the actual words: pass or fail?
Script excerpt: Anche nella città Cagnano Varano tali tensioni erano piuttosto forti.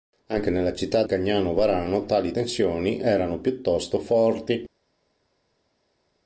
pass